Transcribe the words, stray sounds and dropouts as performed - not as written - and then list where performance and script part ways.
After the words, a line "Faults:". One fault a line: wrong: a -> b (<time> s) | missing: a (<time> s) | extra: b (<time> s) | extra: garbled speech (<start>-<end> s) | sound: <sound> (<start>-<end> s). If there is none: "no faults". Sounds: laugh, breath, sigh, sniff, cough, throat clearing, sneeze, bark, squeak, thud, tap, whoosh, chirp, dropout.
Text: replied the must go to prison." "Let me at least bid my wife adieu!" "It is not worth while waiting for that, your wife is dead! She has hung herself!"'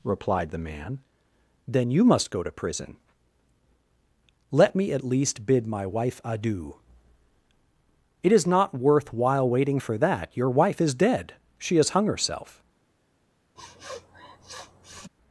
replied the man. "Then you must go to prison." "Let me at least bid my wife adieu!" "It is not worth while waiting for that, your wife is dead! She has hung herself!"'
Faults:
extra: man Then you (0.6 s)
sound: sniff (13.6-15.1 s)